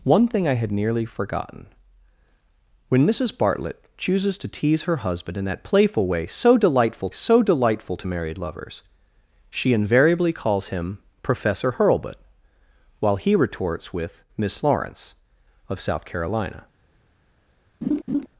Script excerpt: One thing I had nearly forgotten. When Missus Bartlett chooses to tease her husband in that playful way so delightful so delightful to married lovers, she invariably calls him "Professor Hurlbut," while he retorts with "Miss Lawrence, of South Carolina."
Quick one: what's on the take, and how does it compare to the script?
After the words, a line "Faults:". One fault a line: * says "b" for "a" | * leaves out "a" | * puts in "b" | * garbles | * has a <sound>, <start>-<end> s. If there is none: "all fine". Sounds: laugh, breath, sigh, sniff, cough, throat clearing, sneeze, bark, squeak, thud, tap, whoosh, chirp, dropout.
One thing I had nearly forgotten. When Missus Bartlett chooses to tease her husband in that playful way so delightful so delightful to married lovers, she invariably calls him "Professor Hurlbut," while he retorts with "Miss Lawrence, of South Carolina."
Faults:
* has a laugh, 17.8-18.3 s